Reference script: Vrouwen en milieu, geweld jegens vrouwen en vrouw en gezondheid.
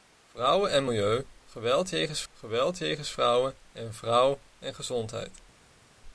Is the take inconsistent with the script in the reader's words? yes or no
yes